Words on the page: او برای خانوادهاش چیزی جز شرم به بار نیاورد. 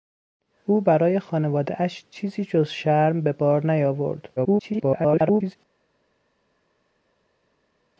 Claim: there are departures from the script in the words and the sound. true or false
true